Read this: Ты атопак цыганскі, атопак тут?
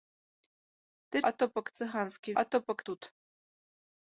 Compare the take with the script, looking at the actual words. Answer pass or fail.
pass